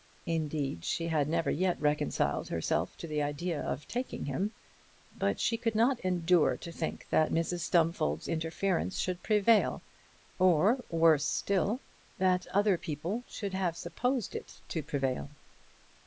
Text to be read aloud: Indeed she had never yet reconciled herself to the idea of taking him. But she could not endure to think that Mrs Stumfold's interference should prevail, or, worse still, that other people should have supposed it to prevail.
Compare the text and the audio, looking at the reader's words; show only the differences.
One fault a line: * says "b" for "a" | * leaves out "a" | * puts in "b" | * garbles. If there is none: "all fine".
all fine